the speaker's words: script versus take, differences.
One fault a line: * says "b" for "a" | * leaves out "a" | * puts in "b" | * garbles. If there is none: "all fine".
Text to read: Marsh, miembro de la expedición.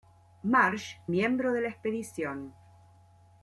all fine